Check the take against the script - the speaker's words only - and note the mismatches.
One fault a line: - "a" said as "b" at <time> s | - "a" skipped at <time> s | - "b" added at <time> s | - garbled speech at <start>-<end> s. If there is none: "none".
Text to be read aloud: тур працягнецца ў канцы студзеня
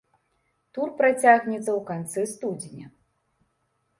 none